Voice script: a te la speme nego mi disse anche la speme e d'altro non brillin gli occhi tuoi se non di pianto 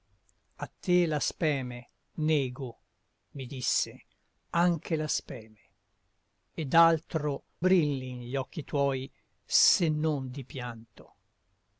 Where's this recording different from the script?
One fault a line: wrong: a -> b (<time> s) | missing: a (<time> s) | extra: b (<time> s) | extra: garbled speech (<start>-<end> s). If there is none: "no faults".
missing: non (7.4 s)